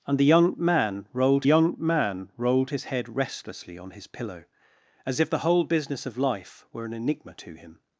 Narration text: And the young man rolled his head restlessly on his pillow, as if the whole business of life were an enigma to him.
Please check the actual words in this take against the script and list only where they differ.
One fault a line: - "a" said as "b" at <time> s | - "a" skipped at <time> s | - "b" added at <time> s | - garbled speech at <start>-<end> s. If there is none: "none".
- "young man rolled" added at 1.4 s